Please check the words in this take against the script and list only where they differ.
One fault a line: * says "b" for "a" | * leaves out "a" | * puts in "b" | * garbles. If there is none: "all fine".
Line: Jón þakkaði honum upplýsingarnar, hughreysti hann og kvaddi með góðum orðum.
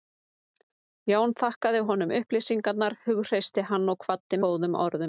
* leaves out "með"